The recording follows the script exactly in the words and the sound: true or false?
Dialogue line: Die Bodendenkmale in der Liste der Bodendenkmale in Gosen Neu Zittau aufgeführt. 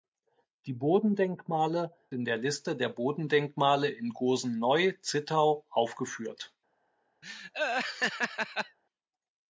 false